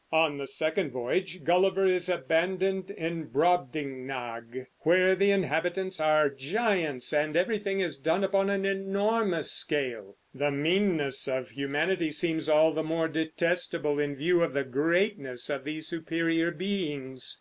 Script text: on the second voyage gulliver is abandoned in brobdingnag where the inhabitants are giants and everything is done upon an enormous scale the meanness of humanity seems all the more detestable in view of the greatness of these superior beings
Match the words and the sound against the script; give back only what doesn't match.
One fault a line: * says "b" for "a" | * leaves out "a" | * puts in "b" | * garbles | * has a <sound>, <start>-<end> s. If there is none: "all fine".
all fine